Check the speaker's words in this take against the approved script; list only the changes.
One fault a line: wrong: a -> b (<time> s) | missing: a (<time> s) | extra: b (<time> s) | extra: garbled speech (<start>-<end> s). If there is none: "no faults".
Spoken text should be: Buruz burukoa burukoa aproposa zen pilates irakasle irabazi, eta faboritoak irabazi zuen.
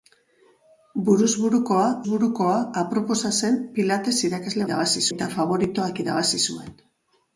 no faults